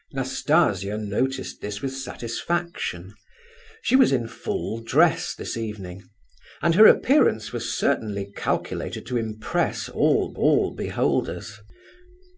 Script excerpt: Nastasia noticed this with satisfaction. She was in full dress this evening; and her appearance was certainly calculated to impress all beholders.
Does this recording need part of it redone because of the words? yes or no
yes